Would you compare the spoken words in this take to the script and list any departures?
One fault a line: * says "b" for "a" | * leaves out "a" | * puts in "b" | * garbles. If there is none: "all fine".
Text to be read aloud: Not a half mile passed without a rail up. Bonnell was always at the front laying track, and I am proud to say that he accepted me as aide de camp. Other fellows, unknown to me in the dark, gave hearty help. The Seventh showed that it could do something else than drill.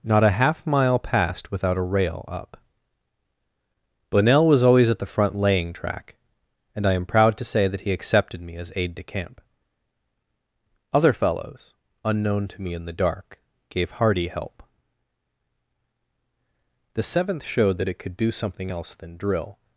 all fine